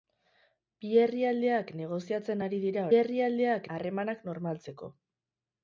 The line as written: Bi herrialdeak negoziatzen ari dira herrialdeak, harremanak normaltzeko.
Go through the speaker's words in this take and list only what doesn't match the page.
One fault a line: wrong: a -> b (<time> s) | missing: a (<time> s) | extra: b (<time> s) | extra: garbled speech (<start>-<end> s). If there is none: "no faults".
no faults